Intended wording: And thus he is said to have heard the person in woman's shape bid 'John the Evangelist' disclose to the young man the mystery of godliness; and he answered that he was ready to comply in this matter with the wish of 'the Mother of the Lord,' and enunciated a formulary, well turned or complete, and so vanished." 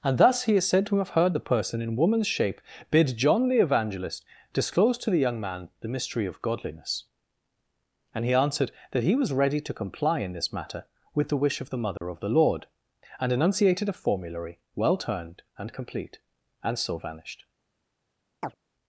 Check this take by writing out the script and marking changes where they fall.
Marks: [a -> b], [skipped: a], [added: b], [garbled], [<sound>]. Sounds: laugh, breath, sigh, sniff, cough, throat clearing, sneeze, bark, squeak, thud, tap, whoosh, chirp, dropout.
And thus he is said to have heard the person in woman's shape bid 'John the Evangelist' disclose to the young man the mystery of godliness; and he answered that he was ready to comply in this matter with the wish of 'the Mother [dropout] of the Lord,' and enunciated a formulary, well turned [or -> and] complete, and so vanished." [chirp]